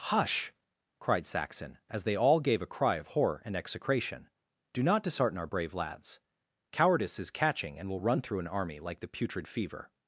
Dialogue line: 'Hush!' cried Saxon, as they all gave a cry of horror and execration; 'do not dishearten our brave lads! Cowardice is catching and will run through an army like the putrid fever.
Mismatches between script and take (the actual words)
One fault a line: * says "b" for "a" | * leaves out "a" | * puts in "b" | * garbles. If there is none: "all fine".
all fine